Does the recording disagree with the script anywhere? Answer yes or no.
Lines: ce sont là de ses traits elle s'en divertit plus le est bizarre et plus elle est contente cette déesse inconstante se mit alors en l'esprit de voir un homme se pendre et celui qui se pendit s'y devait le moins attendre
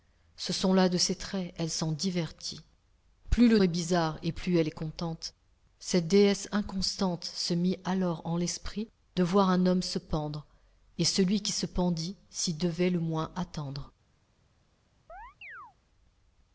no